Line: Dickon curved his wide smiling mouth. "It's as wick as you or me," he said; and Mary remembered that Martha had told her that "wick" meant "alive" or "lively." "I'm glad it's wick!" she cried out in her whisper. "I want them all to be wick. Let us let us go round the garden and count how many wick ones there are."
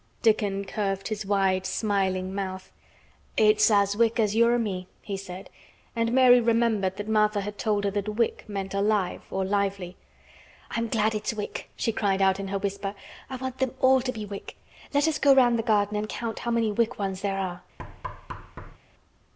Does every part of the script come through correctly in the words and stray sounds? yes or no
no